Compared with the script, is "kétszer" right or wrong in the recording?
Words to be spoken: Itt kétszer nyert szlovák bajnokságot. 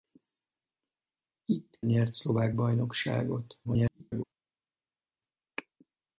wrong